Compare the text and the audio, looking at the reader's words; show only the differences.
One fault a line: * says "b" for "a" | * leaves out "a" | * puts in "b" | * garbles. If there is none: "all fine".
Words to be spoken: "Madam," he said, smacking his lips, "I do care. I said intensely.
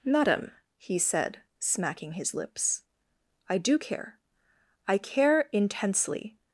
* says "care" for "said"